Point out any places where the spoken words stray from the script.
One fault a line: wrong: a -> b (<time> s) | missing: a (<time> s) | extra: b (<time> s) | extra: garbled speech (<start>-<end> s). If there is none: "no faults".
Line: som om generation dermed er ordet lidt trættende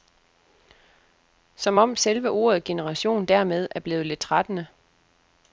extra: selve ordet (2.0 s)
wrong: ordet -> blevet (3.8 s)